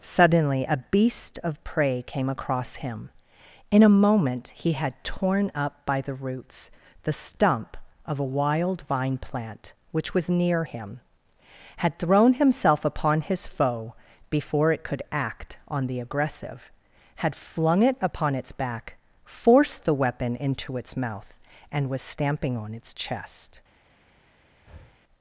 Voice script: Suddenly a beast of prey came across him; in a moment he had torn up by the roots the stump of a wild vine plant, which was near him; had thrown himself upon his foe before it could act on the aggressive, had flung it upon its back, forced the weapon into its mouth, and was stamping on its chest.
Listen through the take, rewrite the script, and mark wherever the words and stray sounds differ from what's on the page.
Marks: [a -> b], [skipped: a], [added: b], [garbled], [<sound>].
Suddenly a beast of prey came across him; in a moment he had torn up by the roots the stump of a wild vine plant, which was near him; had thrown himself upon his foe before it could act on the aggressive, had flung it upon its back, forced the weapon into its mouth, and was stamping on its chest. [breath]